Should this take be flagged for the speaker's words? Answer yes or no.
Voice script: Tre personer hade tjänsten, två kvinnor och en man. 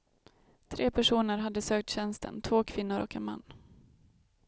yes